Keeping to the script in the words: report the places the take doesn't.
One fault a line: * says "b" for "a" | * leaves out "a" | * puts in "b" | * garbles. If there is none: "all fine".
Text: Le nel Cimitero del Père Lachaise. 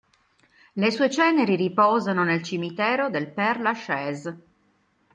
* puts in "sue ceneri riposano"